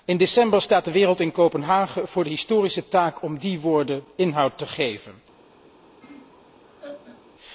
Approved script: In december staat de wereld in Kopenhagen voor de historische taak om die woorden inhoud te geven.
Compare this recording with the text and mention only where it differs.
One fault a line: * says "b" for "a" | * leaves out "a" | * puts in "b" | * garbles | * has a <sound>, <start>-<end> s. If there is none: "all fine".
* has a laugh, 6.0-7.3 s